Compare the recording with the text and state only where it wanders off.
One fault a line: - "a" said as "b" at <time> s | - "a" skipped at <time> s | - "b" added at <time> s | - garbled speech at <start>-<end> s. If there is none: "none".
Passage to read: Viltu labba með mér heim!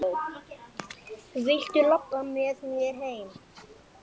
none